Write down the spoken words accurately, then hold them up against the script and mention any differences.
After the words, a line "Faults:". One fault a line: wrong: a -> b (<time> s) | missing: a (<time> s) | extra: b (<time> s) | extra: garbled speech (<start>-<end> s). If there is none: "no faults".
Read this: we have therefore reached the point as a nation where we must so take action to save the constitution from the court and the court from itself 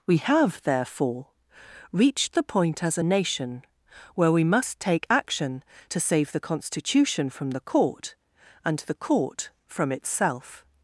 we have therefore reached the point as a nation where we must take action to save the constitution from the court and the court from itself
Faults:
missing: so (4.8 s)